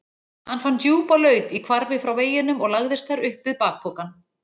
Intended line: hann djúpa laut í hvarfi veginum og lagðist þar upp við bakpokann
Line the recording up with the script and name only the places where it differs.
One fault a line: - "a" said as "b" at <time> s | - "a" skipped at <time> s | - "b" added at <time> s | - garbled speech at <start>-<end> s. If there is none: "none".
- "fann" added at 0.6 s
- "frá" added at 2.0 s